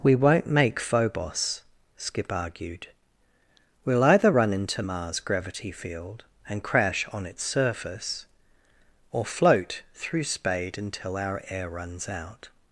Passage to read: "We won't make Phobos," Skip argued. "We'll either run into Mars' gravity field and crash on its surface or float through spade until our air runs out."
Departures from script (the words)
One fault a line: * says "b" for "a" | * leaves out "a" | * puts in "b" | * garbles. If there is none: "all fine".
all fine